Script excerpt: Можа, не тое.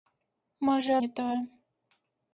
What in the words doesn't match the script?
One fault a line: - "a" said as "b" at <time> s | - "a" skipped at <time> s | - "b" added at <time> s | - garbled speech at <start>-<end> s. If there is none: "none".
none